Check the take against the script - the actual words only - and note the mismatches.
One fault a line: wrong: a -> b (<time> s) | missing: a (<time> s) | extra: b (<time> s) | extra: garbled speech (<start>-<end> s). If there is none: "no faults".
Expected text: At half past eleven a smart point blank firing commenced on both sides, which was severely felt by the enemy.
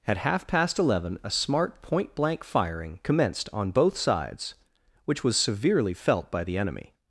no faults